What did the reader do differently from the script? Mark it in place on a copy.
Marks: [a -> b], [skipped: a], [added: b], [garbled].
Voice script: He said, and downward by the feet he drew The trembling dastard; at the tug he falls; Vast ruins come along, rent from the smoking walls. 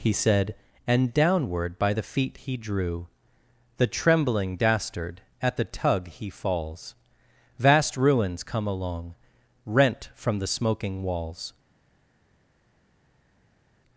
He said, and downward by the feet he drew The trembling dastard; at the tug he falls; Vast ruins come along, rent from the smoking walls.